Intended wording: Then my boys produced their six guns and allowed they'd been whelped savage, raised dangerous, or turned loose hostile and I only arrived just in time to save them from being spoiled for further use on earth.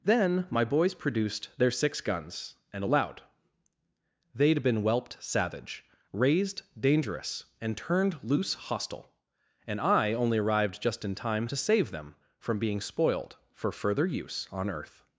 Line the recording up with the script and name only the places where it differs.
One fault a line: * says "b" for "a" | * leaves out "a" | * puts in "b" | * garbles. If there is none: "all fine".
* says "and" for "or"